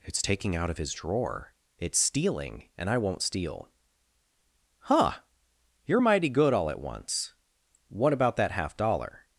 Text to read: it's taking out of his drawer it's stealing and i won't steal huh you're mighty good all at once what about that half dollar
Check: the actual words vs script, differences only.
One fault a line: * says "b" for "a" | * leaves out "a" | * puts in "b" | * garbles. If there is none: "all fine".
all fine